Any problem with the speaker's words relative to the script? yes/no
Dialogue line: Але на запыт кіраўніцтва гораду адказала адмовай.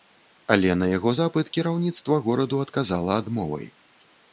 yes